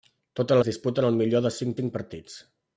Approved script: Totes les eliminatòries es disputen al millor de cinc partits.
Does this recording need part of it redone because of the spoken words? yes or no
yes